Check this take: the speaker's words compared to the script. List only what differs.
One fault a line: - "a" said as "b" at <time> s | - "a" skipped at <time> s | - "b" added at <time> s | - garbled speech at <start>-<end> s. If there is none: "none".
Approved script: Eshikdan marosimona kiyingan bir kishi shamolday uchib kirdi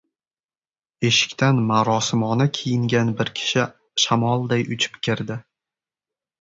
none